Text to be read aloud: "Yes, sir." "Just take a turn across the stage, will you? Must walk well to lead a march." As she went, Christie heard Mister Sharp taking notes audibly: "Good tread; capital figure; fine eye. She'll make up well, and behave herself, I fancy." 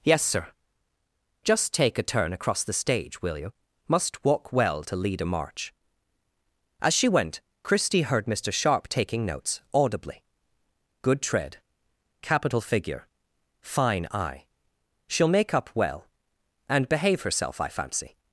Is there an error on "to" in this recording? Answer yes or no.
no